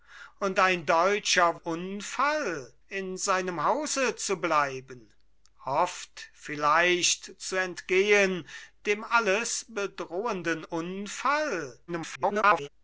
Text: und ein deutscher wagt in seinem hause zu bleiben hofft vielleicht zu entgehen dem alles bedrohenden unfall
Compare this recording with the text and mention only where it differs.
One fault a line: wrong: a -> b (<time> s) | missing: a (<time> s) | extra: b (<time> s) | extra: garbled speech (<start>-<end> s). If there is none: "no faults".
wrong: wagt -> unfall (1.5 s)
extra: garbled speech (11.9-12.7 s)